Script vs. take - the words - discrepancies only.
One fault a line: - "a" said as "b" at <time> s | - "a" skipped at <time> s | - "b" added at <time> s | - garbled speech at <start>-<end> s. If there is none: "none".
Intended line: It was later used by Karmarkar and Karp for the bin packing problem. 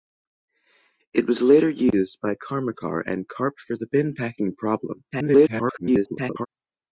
- garbled speech at 5.1-6.5 s